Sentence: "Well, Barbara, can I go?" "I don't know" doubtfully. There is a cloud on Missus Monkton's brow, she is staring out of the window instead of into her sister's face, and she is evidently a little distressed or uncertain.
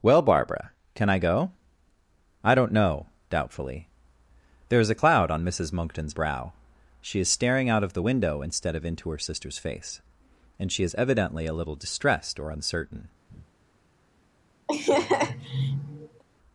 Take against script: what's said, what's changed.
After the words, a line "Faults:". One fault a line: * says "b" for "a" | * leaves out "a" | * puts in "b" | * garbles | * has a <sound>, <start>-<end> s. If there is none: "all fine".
"Well, Barbara, can I go?" "I don't know" doubtfully. There is a cloud on Missus Monkton's brow, she is staring out of the window instead of into her sister's face, and she is evidently a little distressed or uncertain.
Faults:
* has a breath, 13.3-13.5 s
* has a laugh, 14.7-16.2 s